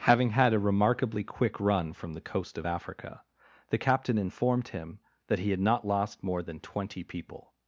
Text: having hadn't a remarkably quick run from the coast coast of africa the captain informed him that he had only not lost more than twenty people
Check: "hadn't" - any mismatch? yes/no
yes